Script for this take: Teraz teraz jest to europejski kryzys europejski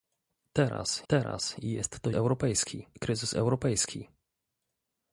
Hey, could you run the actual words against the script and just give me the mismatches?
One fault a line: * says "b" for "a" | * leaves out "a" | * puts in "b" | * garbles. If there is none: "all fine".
all fine